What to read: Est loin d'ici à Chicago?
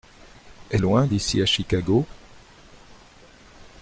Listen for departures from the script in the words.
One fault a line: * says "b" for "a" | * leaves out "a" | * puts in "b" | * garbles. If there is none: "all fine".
all fine